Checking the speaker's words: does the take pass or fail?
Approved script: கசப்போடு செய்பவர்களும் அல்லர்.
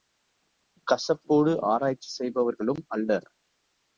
fail